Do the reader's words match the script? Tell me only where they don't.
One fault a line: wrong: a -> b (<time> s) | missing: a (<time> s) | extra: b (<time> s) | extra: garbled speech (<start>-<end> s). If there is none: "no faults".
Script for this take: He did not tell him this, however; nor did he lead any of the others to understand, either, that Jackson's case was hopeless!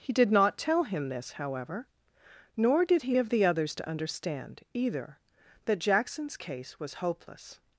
missing: lead any (3.1 s)